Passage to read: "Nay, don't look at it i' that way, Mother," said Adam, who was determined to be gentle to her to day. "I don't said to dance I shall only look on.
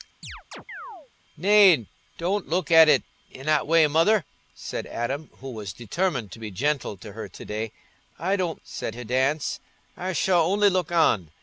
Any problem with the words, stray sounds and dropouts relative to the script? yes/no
yes